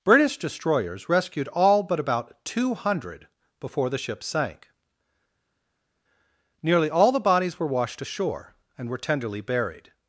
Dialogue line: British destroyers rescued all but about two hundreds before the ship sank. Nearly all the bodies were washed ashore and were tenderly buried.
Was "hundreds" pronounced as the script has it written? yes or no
no